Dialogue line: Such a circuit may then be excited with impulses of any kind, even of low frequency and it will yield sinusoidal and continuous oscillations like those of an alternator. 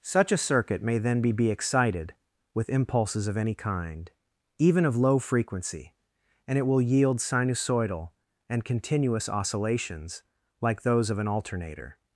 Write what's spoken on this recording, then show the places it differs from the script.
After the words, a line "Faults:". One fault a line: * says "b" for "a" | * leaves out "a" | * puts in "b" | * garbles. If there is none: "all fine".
Such a circuit may then be be excited with impulses of any kind, even of low frequency and it will yield sinusoidal and continuous oscillations like those of an alternator.
Faults:
* puts in "be"